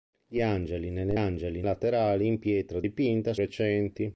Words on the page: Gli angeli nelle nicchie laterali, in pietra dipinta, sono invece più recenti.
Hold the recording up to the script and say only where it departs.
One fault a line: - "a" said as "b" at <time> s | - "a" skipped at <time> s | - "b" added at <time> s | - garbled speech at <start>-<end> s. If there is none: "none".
- "nicchie" said as "angeli" at 1.1 s
- "sono invece più" skipped at 3.3 s